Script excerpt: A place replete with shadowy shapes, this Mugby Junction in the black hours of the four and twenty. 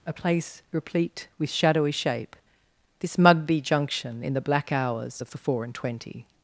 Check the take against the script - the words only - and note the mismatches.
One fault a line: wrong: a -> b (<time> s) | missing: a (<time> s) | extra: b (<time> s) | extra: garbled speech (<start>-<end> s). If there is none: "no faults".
wrong: shapes -> shape (1.9 s)